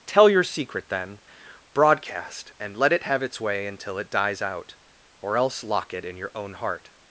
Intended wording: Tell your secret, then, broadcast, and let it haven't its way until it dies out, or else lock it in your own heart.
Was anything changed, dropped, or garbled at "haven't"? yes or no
yes